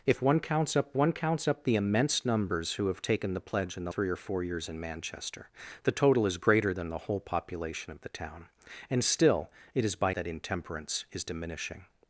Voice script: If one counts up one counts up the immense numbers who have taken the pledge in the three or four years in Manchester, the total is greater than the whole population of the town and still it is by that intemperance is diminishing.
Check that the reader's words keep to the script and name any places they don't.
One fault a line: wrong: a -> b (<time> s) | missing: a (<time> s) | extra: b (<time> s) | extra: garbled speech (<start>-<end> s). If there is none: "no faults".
no faults